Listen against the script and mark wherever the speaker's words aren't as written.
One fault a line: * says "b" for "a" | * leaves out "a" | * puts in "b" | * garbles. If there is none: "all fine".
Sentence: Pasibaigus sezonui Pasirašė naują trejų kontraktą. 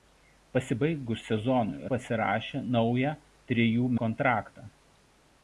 all fine